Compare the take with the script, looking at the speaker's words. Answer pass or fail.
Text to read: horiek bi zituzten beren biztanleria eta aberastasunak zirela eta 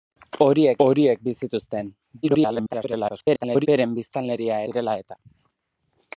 fail